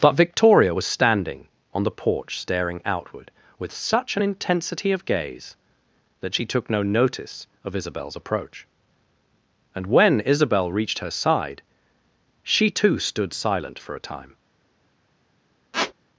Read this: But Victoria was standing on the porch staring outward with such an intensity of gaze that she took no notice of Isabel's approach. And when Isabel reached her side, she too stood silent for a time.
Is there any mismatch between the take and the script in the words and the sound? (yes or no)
yes